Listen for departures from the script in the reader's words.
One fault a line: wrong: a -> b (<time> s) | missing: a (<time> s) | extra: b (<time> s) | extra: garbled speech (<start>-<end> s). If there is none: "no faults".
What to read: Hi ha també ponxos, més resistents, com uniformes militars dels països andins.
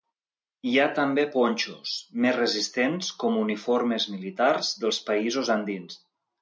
no faults